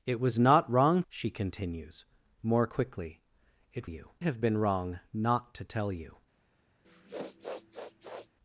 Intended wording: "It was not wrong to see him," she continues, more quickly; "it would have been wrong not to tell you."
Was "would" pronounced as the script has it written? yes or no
no